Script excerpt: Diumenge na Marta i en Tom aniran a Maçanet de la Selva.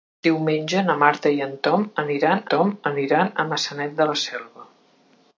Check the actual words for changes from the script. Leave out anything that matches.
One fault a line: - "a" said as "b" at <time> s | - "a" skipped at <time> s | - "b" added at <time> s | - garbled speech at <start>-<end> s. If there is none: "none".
- "Tom aniran" added at 2.5 s